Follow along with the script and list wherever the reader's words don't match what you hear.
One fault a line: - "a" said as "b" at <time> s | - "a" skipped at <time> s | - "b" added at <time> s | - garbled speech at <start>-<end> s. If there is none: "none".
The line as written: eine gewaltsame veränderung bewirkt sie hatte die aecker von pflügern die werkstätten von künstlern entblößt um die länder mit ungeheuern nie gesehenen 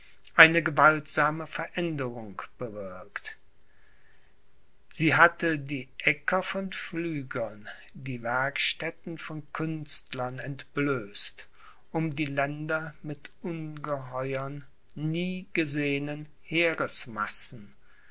none